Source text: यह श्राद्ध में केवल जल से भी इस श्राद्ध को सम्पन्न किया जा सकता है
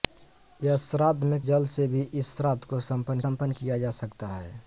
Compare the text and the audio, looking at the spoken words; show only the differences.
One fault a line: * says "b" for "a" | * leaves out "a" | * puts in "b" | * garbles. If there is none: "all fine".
* leaves out "केवल"
* puts in "सम्पन्न"